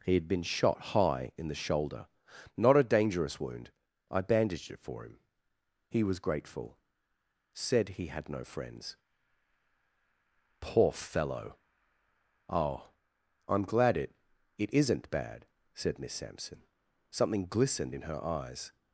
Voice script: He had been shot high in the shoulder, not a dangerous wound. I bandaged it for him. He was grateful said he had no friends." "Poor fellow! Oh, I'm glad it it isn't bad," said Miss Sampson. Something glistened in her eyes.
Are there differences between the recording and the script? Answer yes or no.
no